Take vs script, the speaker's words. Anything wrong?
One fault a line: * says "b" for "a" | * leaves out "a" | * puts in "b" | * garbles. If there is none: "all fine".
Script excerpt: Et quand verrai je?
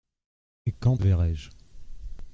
all fine